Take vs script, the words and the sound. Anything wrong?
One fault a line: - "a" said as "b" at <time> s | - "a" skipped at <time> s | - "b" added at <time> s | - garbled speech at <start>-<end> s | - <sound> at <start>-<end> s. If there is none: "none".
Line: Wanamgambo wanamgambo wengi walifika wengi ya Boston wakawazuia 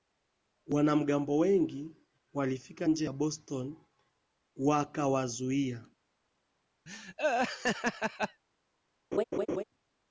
- "wanamgambo" skipped at 1.4 s
- "wengi" said as "nje" at 2.9 s
- laugh at 6.9-8.4 s
- laugh at 9.1-9.6 s